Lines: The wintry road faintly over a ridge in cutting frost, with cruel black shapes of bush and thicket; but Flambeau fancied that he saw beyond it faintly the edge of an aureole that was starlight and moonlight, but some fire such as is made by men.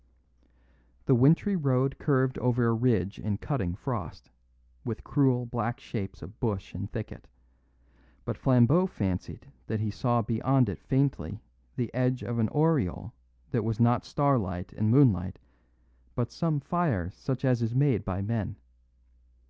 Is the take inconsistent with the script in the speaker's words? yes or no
yes